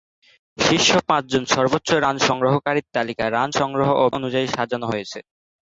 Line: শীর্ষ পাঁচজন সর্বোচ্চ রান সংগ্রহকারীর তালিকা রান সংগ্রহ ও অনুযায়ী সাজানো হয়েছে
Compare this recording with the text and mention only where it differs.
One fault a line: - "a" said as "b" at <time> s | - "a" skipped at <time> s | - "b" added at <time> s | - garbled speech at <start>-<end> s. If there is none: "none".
none